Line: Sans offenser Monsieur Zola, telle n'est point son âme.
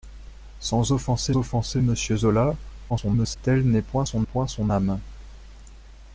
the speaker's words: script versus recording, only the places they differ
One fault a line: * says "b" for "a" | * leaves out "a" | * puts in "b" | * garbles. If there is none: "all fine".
* puts in "offenser"
* garbles
* puts in "point son"